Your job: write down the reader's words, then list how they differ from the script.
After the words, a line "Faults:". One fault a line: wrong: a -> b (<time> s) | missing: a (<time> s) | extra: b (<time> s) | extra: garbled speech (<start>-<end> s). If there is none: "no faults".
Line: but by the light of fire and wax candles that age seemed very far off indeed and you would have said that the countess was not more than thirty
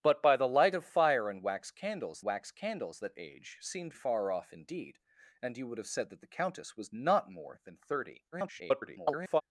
but by the light of fire and wax candles wax candles that age seemed far off indeed and you would have said that the countess was not more than thirty [garbled]
Faults:
extra: wax candles (2.2 s)
missing: very (3.9 s)
extra: garbled speech (8.3-9.4 s)